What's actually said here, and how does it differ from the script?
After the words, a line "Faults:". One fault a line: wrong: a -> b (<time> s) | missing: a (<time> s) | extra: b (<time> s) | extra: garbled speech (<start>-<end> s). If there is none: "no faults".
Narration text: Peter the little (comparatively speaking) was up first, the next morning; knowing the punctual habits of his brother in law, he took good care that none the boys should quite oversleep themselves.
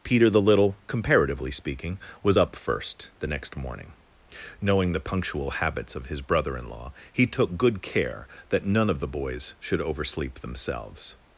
Peter the little (comparatively speaking) was up first, the next morning; knowing the punctual habits of his brother in law, he took good care that none of the boys should oversleep themselves.
Faults:
extra: of (8.9 s)
missing: quite (9.8 s)